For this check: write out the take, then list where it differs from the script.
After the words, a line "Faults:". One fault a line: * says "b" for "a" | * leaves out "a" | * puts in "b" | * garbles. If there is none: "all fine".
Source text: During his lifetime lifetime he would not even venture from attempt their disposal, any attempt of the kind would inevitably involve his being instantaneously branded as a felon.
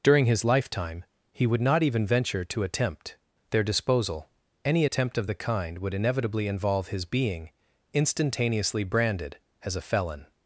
During his lifetime he would not even venture to attempt their disposal, any attempt of the kind would inevitably involve his being instantaneously branded as a felon.
Faults:
* leaves out "lifetime"
* says "to" for "from"